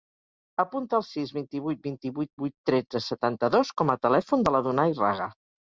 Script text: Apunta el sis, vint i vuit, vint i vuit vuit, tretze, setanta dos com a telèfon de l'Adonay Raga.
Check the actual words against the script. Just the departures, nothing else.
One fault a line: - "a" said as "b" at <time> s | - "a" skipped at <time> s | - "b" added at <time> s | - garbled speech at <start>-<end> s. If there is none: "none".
none